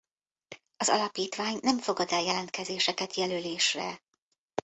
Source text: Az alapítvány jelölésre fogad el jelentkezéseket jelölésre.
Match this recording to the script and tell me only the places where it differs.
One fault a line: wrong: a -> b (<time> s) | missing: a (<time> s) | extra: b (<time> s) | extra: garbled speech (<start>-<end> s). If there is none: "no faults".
wrong: jelölésre -> nem (1.6 s)